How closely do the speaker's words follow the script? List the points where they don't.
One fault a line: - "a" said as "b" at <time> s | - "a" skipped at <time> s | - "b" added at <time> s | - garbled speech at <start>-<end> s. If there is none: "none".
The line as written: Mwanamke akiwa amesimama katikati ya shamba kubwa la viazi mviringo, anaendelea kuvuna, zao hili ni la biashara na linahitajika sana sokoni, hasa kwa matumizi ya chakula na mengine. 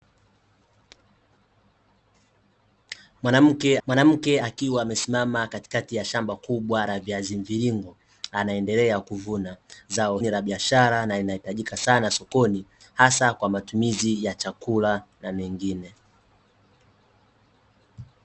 - "mwanamke" added at 3.9 s
- "hili" skipped at 10.2 s